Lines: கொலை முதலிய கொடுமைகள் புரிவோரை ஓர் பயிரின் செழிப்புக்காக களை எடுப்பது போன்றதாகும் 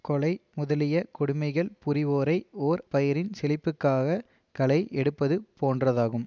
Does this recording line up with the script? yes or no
yes